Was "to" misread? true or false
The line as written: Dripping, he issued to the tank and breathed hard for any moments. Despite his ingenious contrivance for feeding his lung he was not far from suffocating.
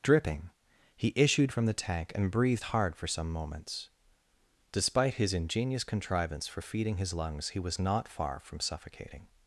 true